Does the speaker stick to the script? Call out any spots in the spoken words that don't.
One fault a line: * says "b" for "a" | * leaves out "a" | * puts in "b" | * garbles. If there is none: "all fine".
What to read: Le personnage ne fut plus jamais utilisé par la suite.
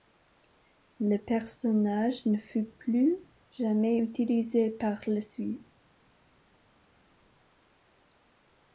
all fine